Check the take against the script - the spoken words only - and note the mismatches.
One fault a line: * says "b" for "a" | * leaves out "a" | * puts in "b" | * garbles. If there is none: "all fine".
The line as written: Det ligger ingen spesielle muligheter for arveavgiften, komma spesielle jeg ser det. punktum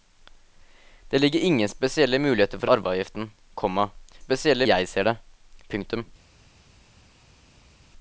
all fine